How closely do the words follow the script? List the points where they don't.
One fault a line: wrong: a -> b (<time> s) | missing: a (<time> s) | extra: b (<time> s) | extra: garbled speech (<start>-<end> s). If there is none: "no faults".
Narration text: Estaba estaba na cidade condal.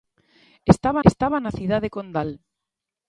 no faults